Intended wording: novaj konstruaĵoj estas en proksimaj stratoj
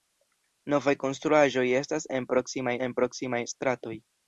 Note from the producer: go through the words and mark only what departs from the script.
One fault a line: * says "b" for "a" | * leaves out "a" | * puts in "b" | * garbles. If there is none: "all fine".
* puts in "en proksimaj"